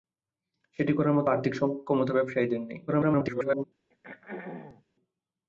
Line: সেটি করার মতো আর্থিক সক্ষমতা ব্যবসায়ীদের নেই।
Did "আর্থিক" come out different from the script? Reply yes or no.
no